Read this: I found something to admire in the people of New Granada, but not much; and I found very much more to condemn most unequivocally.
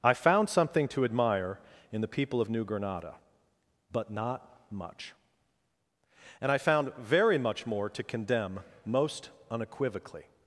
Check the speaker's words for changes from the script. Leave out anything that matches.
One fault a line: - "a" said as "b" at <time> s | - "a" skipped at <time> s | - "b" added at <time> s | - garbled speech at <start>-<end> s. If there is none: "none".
none